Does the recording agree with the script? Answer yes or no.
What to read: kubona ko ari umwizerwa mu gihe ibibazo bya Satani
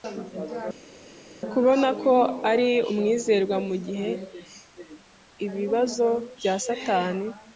yes